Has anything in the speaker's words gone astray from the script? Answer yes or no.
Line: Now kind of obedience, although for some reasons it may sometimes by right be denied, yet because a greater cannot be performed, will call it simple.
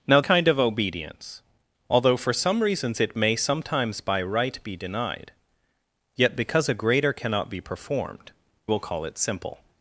no